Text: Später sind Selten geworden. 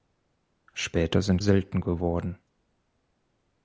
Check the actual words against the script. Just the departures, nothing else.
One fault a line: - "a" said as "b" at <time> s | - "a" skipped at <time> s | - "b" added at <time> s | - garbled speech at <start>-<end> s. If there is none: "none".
none